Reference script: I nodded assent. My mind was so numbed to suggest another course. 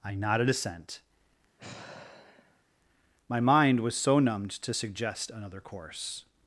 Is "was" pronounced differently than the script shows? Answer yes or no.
no